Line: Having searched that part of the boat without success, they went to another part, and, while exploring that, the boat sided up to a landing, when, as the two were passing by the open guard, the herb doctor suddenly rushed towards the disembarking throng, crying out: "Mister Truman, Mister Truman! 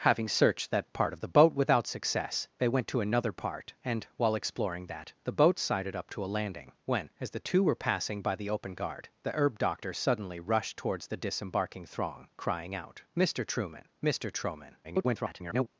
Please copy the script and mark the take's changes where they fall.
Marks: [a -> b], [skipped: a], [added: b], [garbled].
Having searched that part of the boat without success, they went to another part, and, while exploring that, the boat sided up to a landing, when, as the two were passing by the open guard, the herb doctor suddenly rushed towards the disembarking throng, crying out: "Mister Truman, Mister Truman! [garbled]